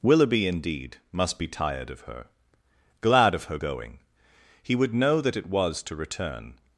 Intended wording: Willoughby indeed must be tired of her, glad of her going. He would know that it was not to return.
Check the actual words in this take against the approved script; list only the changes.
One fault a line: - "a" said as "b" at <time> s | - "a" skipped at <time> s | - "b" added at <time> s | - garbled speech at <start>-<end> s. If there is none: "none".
- "not" skipped at 5.8 s